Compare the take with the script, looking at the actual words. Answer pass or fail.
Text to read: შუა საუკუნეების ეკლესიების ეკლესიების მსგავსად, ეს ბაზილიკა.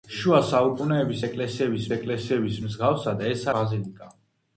pass